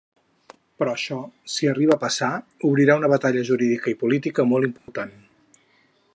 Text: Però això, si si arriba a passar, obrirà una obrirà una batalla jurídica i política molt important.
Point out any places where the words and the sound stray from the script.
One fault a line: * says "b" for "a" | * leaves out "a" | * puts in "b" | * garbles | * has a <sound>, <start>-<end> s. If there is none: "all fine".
* leaves out "si"
* leaves out "obrirà una"
* has a dropout, 4.8-4.9 s